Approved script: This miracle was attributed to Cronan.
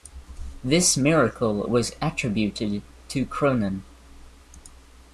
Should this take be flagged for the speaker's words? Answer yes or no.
no